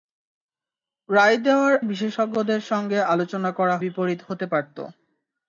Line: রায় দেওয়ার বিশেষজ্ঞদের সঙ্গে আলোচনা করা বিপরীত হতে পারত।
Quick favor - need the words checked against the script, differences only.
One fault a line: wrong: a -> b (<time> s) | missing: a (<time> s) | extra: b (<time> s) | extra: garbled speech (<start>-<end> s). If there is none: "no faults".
no faults